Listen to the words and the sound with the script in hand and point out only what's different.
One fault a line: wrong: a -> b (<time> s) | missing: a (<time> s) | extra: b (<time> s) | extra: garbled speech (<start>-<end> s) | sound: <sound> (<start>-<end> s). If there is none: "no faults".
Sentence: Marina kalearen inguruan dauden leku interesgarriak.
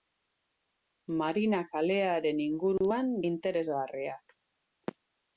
missing: dauden leku (3.1 s)